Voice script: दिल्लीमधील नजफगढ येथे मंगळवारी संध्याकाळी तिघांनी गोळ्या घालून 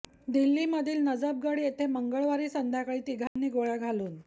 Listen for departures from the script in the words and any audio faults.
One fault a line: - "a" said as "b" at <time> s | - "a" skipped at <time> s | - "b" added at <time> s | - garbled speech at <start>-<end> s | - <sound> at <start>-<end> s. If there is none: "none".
- dropout at 3.3-3.4 s